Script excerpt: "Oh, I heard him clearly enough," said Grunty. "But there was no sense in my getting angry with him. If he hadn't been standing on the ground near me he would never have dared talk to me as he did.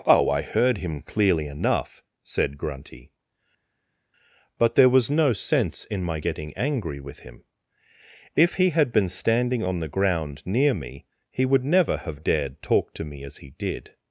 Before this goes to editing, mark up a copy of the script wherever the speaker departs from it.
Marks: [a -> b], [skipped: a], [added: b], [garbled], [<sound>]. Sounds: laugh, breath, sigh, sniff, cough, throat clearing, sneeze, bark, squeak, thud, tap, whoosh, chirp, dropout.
"Oh, I heard him clearly enough," said Grunty. "But there was no sense in my getting angry with him. If he [hadn't -> had] been standing on the ground near me he would never have dared talk to me as he did.